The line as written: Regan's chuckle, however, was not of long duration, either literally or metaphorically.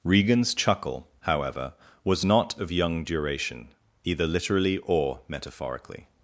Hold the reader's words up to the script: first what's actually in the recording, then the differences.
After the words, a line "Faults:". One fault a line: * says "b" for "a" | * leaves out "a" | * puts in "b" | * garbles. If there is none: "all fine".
Regan's chuckle, however, was not of young duration, either literally or metaphorically.
Faults:
* says "young" for "long"